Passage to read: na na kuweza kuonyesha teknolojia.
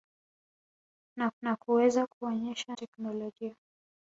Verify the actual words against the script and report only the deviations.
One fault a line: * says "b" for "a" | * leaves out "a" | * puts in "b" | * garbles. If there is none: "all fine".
all fine